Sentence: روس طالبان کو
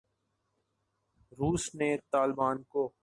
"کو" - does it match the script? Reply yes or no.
yes